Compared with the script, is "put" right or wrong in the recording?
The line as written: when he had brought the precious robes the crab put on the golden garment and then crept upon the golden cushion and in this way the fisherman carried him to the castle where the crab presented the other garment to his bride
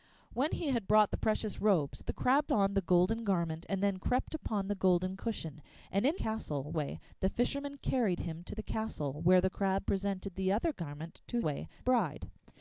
wrong